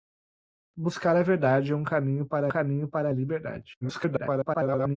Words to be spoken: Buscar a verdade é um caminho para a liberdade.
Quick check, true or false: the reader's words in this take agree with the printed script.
false